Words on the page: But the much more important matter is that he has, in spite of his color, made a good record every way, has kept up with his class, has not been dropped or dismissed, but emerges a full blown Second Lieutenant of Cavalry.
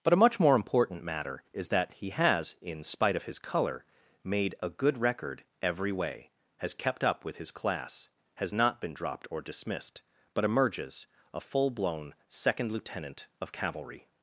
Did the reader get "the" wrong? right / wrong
wrong